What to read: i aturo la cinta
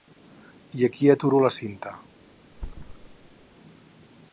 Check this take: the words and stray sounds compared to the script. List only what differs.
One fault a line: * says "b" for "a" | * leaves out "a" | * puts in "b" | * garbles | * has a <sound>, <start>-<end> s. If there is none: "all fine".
* puts in "aquí"
* has a thud, 2.5-3.5 s